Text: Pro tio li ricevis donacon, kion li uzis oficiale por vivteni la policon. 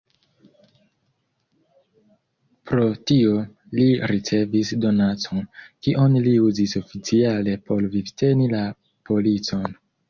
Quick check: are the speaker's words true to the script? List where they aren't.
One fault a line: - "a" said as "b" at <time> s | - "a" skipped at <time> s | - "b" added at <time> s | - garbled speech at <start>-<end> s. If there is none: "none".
none